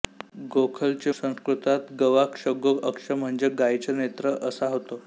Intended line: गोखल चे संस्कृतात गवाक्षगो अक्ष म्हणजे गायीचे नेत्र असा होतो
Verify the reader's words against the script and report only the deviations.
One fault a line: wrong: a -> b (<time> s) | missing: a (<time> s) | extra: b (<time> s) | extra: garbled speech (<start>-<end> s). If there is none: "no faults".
no faults